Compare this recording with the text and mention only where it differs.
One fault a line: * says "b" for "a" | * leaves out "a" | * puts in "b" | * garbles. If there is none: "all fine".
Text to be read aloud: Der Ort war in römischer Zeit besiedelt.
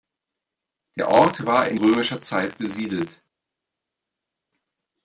all fine